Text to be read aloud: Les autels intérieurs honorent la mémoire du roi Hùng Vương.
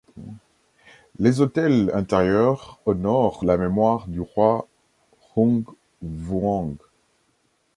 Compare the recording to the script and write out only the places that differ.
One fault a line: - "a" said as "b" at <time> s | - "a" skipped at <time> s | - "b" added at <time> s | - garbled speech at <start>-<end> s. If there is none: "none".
none